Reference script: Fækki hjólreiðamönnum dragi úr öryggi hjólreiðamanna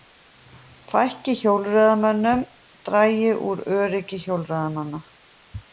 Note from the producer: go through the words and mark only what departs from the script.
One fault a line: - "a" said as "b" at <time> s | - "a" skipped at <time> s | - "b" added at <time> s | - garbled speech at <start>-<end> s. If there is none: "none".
none